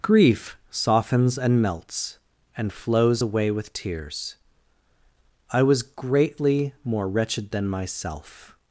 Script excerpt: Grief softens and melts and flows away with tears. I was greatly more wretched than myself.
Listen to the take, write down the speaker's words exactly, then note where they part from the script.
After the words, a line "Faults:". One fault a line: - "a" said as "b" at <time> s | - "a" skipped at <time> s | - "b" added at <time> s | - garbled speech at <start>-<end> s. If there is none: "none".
Grief softens and melts and flows away with tears. I was greatly more wretched than myself.
Faults:
none